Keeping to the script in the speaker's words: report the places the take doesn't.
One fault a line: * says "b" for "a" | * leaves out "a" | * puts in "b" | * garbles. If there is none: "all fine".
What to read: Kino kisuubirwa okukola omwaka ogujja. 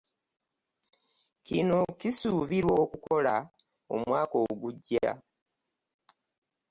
all fine